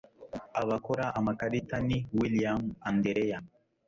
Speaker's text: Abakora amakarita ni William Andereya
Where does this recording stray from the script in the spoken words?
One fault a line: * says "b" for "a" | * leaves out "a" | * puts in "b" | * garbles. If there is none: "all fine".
all fine